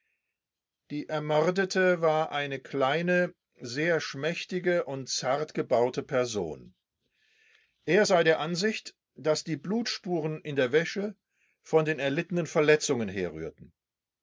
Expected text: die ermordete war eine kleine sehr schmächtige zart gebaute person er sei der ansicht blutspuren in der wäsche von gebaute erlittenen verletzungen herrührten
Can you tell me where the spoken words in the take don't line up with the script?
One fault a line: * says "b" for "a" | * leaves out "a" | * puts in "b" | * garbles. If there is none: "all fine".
* puts in "und"
* puts in "daß die"
* says "den" for "gebaute"